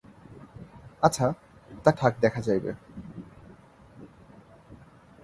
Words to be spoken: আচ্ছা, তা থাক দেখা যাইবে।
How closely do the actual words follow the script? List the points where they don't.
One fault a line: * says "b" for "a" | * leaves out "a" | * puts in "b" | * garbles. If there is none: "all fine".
all fine